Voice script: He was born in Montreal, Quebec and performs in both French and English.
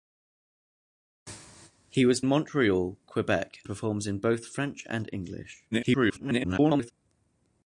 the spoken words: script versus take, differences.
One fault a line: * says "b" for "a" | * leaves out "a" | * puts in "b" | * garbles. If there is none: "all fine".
* leaves out "born in"
* leaves out "and"
* garbles